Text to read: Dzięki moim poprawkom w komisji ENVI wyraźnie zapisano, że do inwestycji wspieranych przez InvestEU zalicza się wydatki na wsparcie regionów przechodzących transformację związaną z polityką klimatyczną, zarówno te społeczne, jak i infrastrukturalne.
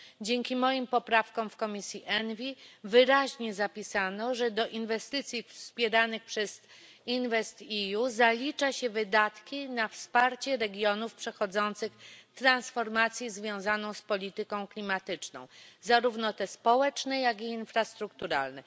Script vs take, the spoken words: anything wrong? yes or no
no